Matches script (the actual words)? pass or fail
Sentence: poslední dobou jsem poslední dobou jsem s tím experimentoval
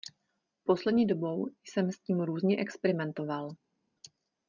fail